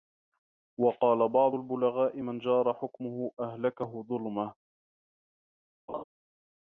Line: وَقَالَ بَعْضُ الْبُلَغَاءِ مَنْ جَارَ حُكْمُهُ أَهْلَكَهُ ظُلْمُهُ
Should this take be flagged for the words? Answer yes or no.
no